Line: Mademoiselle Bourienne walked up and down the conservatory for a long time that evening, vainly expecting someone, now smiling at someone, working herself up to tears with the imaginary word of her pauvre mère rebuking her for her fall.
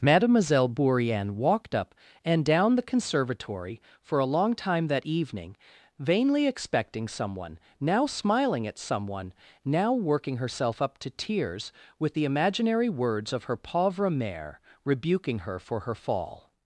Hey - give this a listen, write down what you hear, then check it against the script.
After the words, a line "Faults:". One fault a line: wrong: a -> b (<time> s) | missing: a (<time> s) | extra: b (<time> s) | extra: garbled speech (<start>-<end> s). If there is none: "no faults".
Mademoiselle Bourienne walked up and down the conservatory for a long time that evening, vainly expecting someone, now smiling at someone, now working herself up to tears with the imaginary words of her pauvre mère rebuking her for her fall.
Faults:
extra: now (9.6 s)
wrong: word -> words (12.9 s)